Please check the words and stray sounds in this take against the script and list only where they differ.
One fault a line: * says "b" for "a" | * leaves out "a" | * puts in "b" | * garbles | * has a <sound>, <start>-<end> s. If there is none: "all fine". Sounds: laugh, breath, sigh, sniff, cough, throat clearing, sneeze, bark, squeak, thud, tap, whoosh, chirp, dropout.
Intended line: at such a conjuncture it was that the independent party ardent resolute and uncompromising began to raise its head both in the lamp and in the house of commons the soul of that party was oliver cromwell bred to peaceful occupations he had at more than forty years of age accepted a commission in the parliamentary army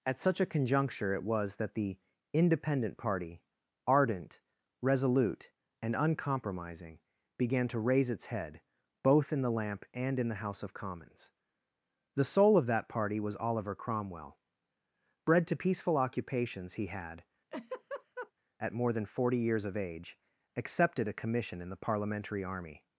* has a laugh, 17.5-18.3 s